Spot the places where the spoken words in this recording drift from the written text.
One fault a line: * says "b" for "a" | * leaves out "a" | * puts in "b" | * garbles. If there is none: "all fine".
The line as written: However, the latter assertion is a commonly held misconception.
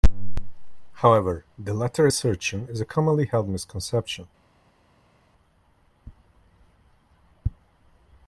all fine